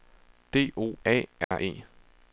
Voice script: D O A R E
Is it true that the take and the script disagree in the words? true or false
false